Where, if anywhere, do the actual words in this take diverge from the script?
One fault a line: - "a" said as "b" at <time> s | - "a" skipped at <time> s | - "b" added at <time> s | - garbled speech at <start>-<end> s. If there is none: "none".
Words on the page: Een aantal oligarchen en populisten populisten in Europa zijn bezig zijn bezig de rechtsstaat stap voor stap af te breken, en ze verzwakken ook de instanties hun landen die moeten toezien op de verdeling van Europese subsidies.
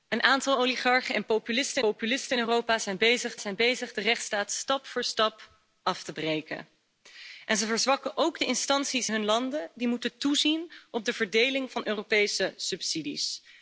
none